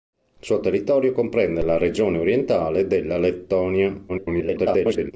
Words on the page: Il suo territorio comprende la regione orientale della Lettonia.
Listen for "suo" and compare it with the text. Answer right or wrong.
right